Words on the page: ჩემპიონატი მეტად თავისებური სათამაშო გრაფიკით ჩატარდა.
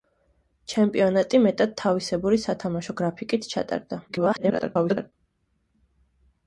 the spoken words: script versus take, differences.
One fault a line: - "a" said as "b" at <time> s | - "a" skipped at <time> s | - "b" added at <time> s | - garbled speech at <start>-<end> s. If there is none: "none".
- garbled speech at 4.1-5.1 s